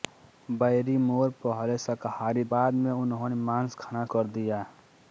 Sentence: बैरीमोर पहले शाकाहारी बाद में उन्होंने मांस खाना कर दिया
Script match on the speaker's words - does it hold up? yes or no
yes